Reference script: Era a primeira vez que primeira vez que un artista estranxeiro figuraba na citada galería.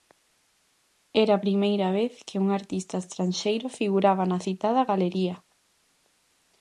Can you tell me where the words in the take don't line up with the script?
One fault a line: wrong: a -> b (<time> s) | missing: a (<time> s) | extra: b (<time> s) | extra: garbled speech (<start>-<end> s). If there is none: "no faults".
missing: primeira vez que (2.4 s)